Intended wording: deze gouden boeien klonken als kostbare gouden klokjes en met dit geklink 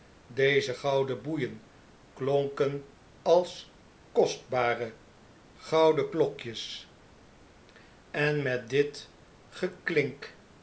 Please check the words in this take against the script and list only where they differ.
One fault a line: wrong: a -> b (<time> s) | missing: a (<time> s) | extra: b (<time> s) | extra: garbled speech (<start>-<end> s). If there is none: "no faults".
no faults